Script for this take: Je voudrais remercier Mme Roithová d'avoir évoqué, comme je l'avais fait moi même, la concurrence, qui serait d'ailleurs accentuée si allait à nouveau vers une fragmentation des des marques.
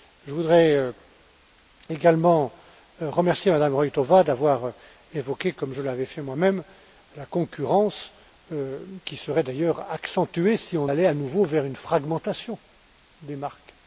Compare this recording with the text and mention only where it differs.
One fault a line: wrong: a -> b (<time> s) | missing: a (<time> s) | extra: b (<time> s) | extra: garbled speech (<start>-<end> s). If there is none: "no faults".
extra: également (1.9 s)
extra: on (10.8 s)
missing: des (13.4 s)